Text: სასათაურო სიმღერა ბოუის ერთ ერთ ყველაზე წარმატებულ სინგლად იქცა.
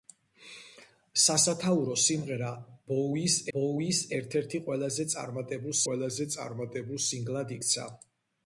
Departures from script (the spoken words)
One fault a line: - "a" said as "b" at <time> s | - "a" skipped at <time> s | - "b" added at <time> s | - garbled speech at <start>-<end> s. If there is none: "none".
- "ბოუის" added at 3.6 s
- "ყველაზე წარმატებულ" added at 5.9 s